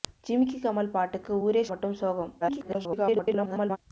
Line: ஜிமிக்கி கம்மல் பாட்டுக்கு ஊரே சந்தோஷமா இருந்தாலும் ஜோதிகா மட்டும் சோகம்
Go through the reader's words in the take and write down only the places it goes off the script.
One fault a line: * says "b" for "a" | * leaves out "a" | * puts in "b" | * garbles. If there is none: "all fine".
* leaves out "சந்தோஷமா இருந்தாலும் ஜோதிகா"
* garbles